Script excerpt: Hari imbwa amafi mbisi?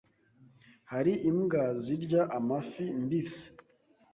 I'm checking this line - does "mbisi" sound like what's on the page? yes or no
yes